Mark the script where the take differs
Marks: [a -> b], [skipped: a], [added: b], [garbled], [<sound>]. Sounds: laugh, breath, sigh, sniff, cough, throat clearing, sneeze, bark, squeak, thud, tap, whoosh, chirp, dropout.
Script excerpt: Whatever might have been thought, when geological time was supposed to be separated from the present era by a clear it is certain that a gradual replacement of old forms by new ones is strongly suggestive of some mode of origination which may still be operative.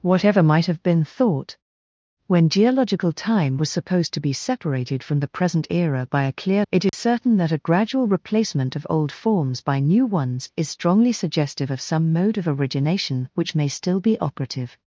Whatever might have been thought, when geological time was supposed to be separated from the present era by a clear it is [dropout] certain that a gradual replacement of old forms by new ones is strongly suggestive of some mode of origination which may still be operative.